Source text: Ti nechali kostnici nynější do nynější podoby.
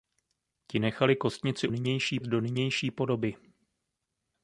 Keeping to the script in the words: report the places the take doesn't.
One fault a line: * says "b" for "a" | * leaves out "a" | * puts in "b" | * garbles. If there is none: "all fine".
all fine